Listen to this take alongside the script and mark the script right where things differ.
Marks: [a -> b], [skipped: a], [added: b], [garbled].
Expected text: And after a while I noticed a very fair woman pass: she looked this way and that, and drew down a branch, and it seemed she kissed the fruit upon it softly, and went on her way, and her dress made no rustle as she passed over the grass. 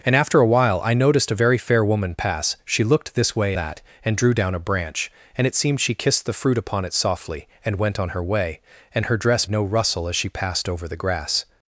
And after a while I noticed a very fair woman pass: she looked this way [skipped: and] that, and drew down a branch, and it seemed she kissed the fruit upon it softly, and went on her way, and her dress [skipped: made] no rustle as she passed over the grass.